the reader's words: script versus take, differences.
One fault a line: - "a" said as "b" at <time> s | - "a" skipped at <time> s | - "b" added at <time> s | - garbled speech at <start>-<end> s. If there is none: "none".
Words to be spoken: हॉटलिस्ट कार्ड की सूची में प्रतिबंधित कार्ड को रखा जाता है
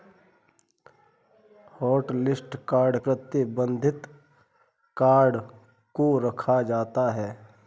- "की सूची में" skipped at 3.0 s